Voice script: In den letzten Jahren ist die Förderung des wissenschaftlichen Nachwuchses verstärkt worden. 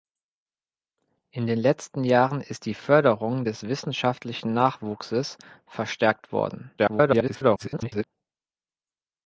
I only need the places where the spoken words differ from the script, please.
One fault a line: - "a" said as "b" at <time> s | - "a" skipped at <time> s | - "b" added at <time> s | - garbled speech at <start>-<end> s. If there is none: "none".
- garbled speech at 6.8-8.0 s